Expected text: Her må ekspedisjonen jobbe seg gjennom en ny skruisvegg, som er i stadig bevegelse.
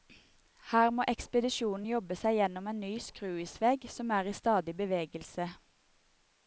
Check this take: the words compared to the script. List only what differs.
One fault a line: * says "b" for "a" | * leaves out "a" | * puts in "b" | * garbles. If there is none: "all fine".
all fine